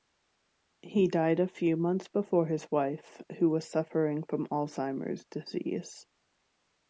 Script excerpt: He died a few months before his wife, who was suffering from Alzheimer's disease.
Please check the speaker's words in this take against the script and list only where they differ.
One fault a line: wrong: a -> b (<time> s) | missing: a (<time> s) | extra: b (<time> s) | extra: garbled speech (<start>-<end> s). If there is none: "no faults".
no faults